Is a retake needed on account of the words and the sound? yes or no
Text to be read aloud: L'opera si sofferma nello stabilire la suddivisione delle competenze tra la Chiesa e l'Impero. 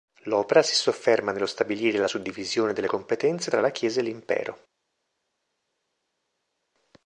no